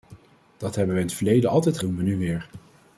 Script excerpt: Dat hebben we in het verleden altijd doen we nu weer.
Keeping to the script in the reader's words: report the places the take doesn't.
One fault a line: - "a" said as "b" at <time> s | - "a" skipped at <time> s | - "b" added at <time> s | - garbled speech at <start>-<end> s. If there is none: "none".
none